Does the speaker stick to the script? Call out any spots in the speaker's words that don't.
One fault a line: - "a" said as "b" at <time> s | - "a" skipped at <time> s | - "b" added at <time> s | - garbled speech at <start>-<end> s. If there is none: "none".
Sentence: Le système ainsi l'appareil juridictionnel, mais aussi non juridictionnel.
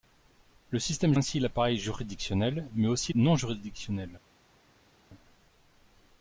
none